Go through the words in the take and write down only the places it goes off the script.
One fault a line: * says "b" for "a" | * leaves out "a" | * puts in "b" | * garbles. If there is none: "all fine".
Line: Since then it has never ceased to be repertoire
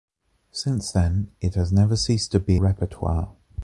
all fine